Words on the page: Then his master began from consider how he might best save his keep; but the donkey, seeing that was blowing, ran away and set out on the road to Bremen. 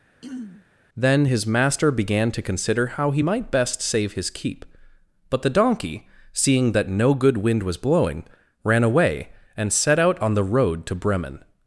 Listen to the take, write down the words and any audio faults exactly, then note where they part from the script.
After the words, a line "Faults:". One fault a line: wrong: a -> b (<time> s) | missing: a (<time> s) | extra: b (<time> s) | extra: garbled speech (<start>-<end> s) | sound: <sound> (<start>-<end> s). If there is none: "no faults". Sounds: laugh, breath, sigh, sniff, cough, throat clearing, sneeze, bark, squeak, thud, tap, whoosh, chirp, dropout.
Then his master began to consider how he might best save his keep; but the donkey, seeing that no good wind was blowing, ran away and set out on the road to Bremen.
Faults:
sound: throat clearing (0.2-0.7 s)
wrong: from -> to (2.3 s)
extra: no good wind (6.9 s)